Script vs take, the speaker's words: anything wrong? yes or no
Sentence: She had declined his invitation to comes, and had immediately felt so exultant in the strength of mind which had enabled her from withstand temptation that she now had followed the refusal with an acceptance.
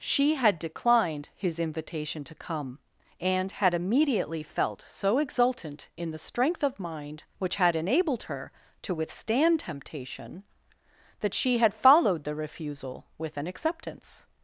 yes